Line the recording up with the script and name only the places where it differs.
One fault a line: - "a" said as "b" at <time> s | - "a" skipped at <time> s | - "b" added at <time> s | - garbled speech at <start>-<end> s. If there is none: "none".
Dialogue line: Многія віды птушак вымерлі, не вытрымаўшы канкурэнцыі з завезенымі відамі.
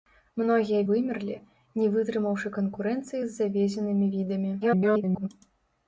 - "віды птушак" skipped at 0.8 s
- garbled speech at 4.6-5.3 s